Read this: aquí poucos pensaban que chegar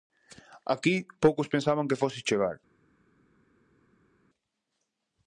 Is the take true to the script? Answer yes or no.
no